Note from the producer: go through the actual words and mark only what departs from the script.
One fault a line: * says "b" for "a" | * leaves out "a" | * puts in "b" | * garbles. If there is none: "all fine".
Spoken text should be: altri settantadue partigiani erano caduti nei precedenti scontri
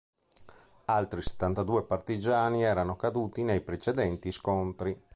all fine